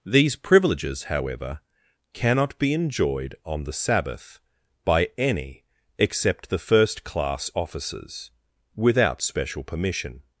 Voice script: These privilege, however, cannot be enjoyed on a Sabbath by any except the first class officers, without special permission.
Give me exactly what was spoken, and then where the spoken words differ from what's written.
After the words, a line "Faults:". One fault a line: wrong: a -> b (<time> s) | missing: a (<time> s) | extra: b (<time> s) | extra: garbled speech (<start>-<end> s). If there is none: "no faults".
These privileges, however, cannot be enjoyed on the Sabbath by any except the first class officers, without special permission.
Faults:
wrong: privilege -> privileges (0.3 s)
wrong: a -> the (3.6 s)